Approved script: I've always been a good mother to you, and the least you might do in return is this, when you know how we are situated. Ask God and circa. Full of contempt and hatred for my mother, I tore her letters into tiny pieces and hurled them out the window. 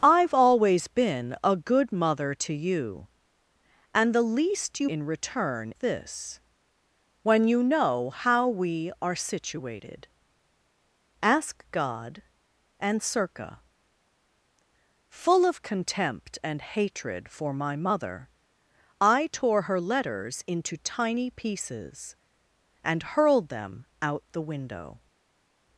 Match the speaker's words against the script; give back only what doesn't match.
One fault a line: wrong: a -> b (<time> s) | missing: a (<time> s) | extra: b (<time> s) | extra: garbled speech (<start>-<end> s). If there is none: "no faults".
missing: might do (4.9 s)
missing: is (5.7 s)